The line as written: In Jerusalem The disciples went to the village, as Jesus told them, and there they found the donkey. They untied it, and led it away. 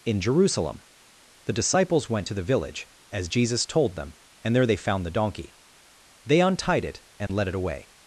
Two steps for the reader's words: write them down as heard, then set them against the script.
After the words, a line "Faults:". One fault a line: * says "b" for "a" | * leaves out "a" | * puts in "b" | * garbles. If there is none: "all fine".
In Jerusalem The disciples went to the village, as Jesus told them, and there they found the donkey. They untied it, and led it away.
Faults:
all fine